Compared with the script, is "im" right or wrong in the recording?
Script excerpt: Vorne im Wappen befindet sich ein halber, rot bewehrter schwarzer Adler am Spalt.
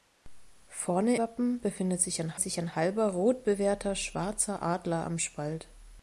wrong